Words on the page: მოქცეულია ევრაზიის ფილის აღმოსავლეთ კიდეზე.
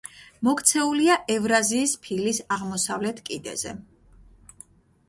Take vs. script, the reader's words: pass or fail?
pass